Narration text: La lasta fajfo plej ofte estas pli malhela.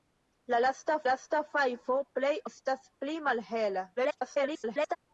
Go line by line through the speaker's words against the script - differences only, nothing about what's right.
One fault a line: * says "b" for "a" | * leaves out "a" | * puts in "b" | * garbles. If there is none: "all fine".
* puts in "lasta"
* leaves out "ofte"
* garbles